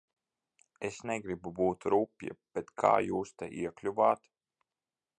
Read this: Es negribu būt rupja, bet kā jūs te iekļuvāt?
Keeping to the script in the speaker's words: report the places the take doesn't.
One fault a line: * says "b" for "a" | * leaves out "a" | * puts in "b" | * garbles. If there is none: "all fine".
all fine